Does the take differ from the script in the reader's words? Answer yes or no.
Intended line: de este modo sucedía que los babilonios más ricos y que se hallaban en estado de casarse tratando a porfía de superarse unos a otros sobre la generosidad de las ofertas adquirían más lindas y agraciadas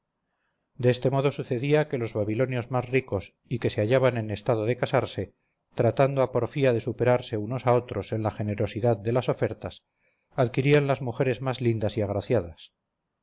yes